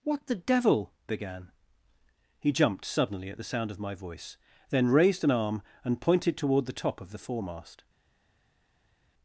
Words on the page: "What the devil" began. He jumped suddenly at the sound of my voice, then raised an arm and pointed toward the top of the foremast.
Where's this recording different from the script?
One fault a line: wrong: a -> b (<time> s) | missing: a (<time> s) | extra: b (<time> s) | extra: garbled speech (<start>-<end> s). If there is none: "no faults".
no faults